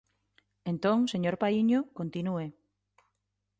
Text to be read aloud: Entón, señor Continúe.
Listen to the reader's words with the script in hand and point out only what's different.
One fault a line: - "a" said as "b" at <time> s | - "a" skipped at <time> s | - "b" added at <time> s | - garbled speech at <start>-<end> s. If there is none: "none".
- "Paíño" added at 1.4 s